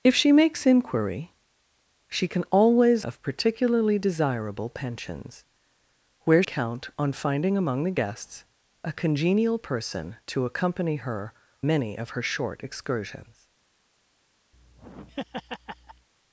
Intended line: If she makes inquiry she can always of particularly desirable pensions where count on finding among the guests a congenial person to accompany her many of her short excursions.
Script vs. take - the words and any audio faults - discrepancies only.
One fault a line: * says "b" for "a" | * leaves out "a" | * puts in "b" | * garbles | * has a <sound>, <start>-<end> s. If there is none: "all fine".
* has a laugh, 14.5-16.1 s